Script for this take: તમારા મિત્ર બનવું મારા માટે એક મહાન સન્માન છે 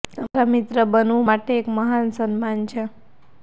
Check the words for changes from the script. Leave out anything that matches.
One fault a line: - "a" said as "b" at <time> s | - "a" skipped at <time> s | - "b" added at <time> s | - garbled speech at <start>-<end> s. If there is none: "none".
- "મારા" skipped at 1.3 s